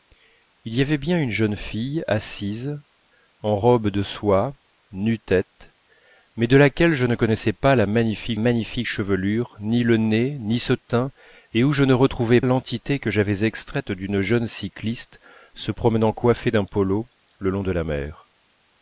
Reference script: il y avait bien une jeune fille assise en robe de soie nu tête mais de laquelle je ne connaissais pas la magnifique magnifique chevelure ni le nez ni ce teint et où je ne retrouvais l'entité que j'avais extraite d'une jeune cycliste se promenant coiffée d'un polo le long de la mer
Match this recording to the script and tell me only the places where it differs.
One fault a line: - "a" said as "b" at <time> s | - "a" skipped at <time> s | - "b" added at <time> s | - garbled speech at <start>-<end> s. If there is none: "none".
none